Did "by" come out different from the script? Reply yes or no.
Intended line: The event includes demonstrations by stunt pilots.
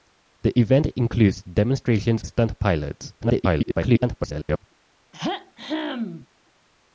yes